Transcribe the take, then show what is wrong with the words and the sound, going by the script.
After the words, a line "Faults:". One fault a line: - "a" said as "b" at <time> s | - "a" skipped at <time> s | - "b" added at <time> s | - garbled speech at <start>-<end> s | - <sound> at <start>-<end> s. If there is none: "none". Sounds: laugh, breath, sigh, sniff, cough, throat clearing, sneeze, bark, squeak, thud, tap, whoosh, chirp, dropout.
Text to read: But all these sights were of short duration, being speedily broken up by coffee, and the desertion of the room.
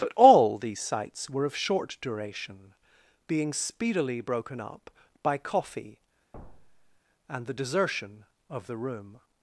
But all these sights were of short duration, being speedily broken up by coffee, and the desertion of the room.
Faults:
- thud at 6.3-7.0 s